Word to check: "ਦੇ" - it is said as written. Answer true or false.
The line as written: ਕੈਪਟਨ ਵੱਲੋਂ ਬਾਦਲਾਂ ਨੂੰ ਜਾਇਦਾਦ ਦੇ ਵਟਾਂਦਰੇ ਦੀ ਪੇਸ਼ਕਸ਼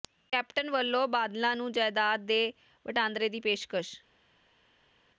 true